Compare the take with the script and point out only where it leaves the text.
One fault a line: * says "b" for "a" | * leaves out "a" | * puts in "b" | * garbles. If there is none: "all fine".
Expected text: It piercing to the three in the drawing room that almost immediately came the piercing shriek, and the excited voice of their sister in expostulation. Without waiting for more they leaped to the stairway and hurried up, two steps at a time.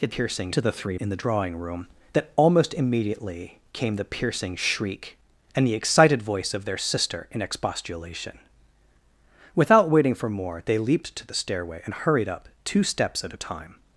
all fine